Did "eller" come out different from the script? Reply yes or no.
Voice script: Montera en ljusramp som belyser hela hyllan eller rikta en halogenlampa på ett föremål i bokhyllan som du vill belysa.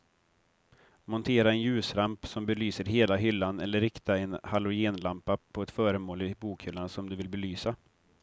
no